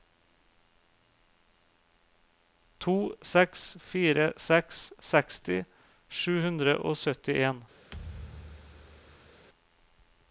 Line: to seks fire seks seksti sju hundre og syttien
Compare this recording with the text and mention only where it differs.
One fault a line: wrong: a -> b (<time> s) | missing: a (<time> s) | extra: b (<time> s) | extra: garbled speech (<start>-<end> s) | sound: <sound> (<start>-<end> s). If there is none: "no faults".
sound: thud (7.9-9.5 s)